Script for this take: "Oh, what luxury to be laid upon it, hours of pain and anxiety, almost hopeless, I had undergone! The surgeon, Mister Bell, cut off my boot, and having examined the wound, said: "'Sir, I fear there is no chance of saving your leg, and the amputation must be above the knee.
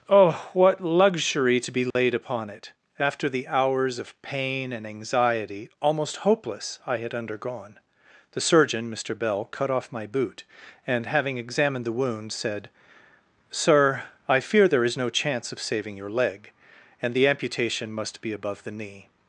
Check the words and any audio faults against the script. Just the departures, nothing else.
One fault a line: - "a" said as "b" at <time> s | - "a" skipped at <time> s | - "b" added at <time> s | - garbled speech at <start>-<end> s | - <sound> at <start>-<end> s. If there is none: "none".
- dropout at 1.9-2.0 s
- "after the" added at 3.0 s